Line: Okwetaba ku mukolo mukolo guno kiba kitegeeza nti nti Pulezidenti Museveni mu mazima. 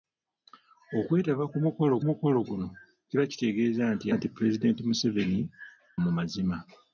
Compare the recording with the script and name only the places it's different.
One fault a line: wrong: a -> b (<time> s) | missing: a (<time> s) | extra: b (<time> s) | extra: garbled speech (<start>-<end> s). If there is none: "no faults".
no faults